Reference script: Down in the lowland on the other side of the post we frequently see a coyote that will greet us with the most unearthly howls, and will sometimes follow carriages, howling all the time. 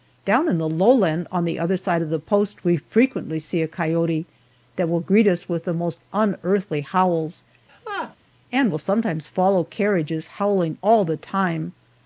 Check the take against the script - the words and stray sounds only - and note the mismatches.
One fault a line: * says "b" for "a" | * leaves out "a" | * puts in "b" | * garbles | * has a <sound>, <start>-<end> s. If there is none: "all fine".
* has a laugh, 7.7-8.2 s